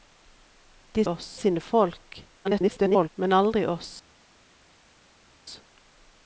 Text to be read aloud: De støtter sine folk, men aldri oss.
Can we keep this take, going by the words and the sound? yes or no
no